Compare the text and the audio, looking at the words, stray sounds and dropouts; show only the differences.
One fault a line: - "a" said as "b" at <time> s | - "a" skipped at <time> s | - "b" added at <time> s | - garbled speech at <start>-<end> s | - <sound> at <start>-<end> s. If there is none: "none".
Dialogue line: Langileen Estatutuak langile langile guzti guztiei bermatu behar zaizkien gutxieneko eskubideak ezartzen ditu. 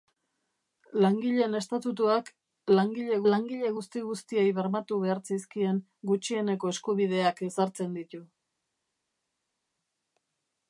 none